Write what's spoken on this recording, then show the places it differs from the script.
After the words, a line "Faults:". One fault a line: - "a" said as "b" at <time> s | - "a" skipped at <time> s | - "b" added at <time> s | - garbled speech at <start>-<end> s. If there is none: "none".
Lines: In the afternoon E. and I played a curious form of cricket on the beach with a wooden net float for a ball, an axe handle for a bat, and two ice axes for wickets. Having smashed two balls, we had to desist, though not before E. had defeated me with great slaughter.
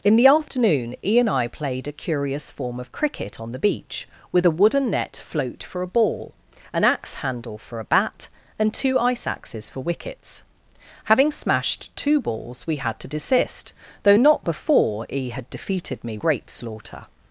In the afternoon E. and I played a curious form of cricket on the beach with a wooden net float for a ball, an axe handle for a bat, and two ice axes for wickets. Having smashed two balls, we had to desist, though not before E. had defeated me great slaughter.
Faults:
- "with" skipped at 16.2 s